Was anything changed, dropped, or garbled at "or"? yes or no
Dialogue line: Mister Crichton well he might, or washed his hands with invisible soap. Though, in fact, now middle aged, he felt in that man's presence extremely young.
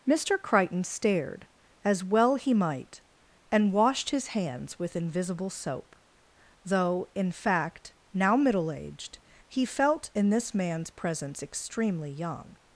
yes